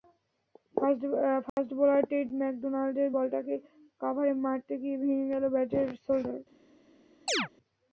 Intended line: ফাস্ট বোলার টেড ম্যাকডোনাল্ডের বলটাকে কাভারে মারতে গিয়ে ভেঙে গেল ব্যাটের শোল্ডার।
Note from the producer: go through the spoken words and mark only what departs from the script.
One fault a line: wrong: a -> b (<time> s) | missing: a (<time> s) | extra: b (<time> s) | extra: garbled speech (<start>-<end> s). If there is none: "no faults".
no faults